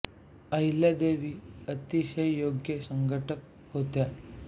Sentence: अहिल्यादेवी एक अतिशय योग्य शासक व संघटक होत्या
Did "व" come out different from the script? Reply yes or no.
yes